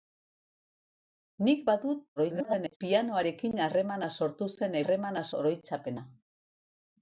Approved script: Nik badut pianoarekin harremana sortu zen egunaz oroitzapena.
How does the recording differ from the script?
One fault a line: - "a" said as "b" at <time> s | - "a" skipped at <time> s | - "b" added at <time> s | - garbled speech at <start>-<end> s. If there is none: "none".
- garbled speech at 2.2-2.8 s
- "egunaz" said as "harremana" at 4.8 s